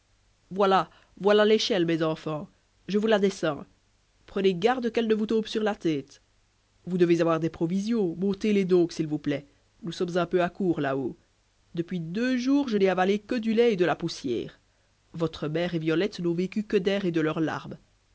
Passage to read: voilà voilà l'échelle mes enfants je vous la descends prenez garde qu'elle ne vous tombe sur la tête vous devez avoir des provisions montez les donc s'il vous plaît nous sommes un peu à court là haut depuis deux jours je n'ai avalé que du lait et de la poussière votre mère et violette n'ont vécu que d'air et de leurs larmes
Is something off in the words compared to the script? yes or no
no